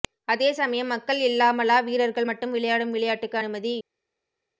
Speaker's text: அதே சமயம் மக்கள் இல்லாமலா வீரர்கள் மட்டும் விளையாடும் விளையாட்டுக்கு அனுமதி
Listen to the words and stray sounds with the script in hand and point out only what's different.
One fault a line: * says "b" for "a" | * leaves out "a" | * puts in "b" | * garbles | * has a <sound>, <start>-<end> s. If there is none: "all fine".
all fine